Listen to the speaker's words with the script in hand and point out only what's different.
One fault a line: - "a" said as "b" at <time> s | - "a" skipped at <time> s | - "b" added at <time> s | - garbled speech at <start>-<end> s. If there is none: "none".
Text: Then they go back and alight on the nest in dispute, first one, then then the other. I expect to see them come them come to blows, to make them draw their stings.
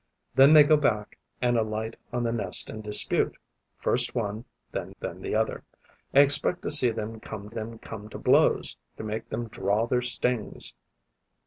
none